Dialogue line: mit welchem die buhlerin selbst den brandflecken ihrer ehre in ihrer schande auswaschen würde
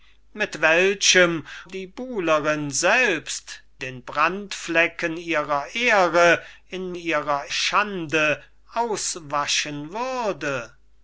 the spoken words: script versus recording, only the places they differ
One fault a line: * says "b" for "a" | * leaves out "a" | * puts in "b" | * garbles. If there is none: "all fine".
all fine